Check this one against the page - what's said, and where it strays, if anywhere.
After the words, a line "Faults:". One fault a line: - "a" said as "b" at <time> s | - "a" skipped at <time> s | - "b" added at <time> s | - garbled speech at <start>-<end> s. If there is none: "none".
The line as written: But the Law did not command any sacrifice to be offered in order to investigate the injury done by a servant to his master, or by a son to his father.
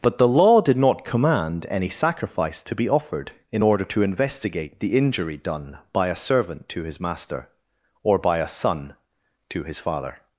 But the Law did not command any sacrifice to be offered in order to investigate the injury done by a servant to his master, or by a son to his father.
Faults:
none